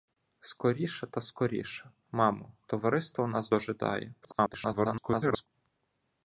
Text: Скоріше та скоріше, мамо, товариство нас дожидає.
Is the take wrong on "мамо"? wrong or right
right